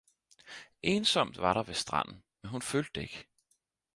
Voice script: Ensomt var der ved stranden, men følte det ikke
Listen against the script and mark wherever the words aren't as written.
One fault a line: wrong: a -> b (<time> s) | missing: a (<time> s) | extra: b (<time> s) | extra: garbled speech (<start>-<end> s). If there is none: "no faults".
extra: hun (2.5 s)